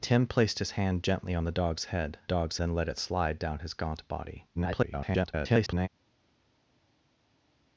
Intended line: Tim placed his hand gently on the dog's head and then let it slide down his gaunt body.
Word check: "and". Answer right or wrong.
wrong